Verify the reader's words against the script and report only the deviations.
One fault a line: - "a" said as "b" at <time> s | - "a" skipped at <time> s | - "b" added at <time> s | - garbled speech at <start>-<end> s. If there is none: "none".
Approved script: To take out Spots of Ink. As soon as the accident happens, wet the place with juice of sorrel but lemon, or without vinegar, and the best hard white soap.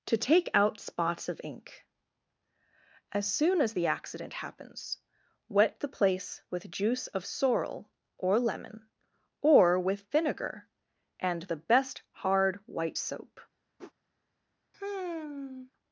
- "but" said as "or" at 8.2 s
- "without" said as "with" at 9.8 s